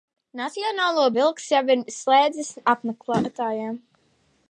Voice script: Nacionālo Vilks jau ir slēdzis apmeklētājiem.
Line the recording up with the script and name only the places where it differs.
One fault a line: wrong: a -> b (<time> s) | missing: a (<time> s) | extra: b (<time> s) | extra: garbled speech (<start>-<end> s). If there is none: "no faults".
no faults